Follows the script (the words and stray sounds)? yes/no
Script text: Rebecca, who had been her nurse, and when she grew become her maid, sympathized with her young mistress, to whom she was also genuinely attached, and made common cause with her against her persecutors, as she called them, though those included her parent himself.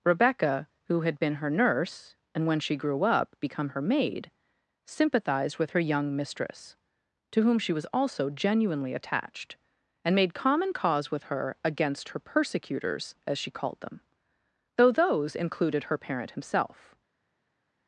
no